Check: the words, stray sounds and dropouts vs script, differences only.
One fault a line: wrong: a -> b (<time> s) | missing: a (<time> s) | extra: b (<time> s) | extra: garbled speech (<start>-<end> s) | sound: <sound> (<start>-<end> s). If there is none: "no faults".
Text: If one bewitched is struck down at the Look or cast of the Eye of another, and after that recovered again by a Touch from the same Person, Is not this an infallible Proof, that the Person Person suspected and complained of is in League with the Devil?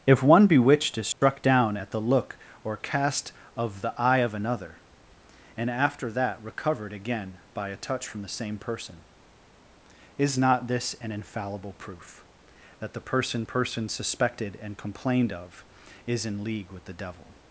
sound: dropout (1.1-1.2 s)